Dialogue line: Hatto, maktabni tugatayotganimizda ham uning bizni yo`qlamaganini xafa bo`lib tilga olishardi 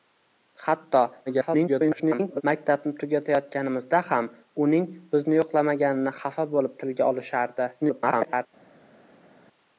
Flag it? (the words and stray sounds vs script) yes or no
yes